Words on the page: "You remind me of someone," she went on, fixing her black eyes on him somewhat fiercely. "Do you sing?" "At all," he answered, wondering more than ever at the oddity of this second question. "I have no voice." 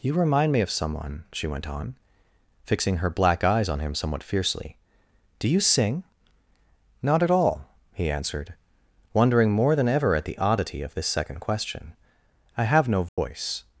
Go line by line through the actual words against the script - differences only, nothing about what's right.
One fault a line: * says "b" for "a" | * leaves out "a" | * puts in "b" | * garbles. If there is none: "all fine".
* puts in "Not"